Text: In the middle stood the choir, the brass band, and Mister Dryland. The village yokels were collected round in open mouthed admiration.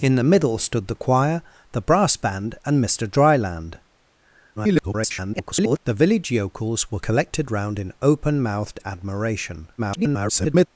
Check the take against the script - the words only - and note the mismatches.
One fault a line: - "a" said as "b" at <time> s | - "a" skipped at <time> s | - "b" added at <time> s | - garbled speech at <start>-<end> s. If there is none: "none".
- garbled speech at 4.6-5.8 s
- garbled speech at 9.8-10.7 s